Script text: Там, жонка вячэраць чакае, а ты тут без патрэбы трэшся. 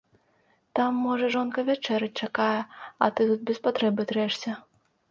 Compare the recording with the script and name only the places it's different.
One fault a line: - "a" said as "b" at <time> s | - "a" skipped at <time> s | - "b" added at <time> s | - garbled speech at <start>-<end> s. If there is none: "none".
- "можа" added at 1.1 s